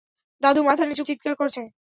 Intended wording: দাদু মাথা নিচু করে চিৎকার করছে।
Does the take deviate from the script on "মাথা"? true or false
false